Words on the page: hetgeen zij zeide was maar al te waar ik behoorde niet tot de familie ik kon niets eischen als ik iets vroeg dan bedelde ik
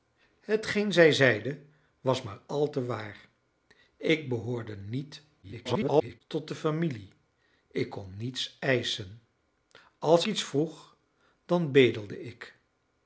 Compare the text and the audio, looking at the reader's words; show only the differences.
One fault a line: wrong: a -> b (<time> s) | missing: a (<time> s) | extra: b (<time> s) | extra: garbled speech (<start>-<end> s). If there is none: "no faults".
extra: garbled speech (5.4-6.2 s)
missing: ik (10.3 s)